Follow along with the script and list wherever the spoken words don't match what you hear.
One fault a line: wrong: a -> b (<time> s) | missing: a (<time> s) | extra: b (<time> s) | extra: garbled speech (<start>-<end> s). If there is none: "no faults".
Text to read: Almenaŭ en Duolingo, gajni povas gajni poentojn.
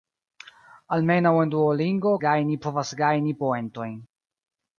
no faults